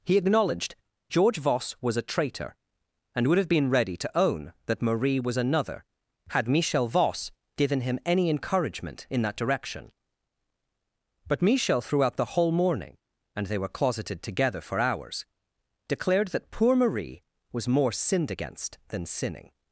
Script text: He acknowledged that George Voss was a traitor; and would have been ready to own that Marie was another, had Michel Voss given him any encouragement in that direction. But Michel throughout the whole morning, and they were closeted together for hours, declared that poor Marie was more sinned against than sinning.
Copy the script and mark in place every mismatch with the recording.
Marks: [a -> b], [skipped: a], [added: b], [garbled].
He acknowledged [skipped: that] George Voss was a traitor; and would have been ready to own that Marie was another, had Michel Voss given him any encouragement in that direction. But Michel throughout the whole morning, and they were closeted together for hours, declared that poor Marie was more sinned against than sinning.